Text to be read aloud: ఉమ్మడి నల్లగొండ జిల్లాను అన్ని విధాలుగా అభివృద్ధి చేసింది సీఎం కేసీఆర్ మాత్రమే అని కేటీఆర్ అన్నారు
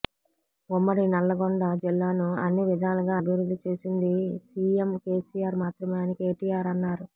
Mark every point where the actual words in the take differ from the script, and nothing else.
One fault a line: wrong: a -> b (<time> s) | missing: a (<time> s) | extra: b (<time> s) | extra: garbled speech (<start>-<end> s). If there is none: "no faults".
no faults